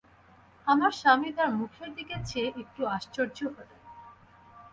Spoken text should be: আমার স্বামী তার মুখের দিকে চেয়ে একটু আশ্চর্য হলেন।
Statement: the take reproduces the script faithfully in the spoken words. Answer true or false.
true